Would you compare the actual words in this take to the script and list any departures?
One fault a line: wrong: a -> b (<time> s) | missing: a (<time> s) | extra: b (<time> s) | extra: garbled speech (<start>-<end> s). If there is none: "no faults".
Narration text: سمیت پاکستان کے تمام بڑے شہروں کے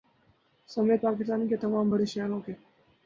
no faults